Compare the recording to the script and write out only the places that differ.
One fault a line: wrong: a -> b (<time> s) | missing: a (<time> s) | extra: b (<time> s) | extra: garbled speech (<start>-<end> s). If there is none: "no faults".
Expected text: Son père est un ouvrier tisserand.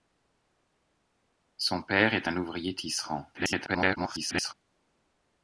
extra: garbled speech (3.3-4.5 s)